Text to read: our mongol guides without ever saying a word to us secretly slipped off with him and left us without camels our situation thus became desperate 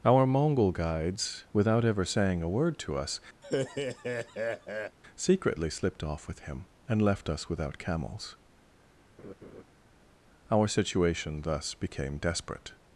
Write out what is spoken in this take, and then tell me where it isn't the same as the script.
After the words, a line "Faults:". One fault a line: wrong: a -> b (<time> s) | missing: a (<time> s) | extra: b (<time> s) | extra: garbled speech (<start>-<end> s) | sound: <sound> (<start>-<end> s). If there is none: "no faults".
our mongol guides without ever saying a word to us secretly slipped off with him and left us without camels our situation thus became desperate
Faults:
sound: laugh (3.4-5.0 s)
sound: laugh (9.2-9.6 s)